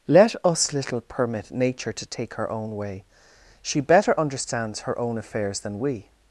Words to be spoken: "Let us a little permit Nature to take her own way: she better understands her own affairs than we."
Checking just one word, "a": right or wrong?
wrong